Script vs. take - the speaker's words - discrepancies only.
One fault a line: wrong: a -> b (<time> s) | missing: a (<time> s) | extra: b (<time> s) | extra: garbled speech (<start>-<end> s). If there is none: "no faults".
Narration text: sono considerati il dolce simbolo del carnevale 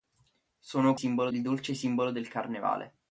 wrong: considerati -> simbolo (0.9 s)